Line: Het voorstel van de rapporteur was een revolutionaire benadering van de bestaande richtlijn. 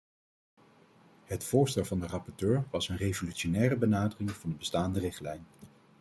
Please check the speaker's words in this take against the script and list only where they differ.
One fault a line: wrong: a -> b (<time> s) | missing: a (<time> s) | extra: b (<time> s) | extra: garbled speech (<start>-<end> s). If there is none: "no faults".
no faults